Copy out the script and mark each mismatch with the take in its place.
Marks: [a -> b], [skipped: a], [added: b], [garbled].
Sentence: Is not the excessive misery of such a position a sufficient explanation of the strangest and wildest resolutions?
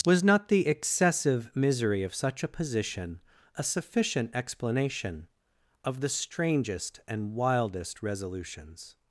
[Is -> Was] not the excessive misery of such a position a sufficient explanation of the strangest and wildest resolutions?